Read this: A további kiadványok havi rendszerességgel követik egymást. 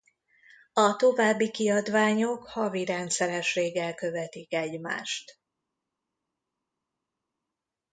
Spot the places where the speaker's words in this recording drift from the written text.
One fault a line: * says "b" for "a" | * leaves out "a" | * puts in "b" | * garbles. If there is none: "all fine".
all fine